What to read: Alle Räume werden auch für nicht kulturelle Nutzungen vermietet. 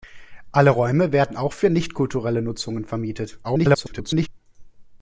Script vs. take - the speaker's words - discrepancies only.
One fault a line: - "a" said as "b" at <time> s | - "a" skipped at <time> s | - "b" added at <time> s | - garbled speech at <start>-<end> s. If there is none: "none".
- garbled speech at 3.4-4.3 s